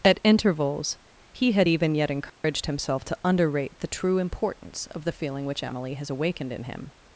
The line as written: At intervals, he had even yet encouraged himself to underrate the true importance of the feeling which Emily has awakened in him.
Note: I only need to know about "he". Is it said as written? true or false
true